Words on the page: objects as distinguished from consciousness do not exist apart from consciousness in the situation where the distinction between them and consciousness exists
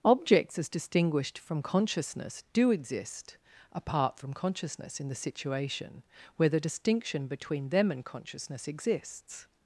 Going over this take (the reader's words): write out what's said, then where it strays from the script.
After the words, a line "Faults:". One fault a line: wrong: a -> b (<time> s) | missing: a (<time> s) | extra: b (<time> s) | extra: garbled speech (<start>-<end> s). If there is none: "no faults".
objects as distinguished from consciousness do exist apart from consciousness in the situation where the distinction between them and consciousness exists
Faults:
missing: not (2.7 s)